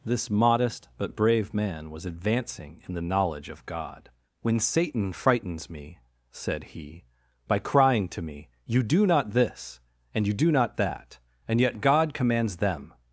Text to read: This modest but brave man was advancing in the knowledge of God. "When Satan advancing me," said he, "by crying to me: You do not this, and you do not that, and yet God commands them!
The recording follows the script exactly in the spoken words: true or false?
false